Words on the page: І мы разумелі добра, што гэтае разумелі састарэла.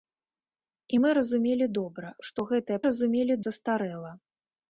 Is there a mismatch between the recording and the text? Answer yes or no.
no